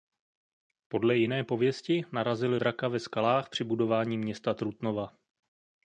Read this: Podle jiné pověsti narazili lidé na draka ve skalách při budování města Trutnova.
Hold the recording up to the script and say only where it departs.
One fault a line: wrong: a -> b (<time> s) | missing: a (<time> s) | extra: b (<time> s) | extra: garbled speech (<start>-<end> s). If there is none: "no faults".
missing: lidé na (2.6 s)